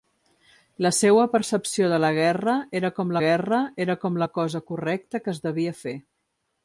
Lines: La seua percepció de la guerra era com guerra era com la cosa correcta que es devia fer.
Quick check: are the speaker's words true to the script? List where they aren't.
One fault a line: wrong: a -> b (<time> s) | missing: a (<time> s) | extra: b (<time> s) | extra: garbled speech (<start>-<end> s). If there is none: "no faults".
no faults